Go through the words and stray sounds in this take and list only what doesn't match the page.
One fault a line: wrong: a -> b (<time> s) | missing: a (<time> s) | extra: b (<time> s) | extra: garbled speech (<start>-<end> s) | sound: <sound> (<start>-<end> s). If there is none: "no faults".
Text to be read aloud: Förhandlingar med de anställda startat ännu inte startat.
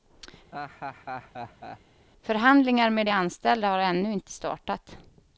sound: laugh (0.5-1.8 s)
wrong: startat -> har (3.7 s)